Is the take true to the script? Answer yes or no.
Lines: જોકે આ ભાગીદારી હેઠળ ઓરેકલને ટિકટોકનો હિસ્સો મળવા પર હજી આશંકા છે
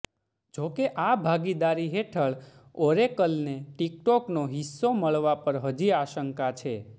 yes